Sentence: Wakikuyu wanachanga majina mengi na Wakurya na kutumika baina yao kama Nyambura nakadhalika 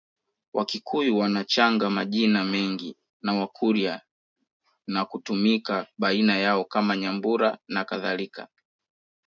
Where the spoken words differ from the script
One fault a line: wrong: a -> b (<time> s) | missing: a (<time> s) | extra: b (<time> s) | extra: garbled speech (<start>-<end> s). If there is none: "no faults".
no faults